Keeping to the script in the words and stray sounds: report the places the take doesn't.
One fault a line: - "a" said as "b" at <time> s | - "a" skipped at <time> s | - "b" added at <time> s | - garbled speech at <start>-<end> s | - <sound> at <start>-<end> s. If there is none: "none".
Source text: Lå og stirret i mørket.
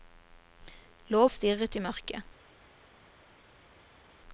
none